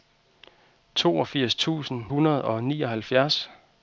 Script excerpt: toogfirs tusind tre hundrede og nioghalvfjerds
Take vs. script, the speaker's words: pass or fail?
fail